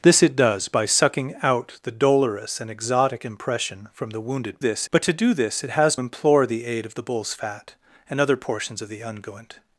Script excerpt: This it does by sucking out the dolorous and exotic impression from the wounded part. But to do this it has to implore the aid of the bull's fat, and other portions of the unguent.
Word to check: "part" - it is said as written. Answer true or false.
false